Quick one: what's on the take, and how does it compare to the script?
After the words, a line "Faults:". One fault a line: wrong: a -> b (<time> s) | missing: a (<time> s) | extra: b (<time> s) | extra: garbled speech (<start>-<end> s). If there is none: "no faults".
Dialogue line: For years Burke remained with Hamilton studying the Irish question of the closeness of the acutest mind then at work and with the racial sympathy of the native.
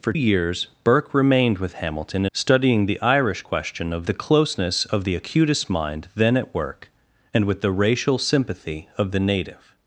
For years Burke remained with Hamilton studying the Irish question of the closeness of the acutest mind then at work and with the racial sympathy of the native.
Faults:
no faults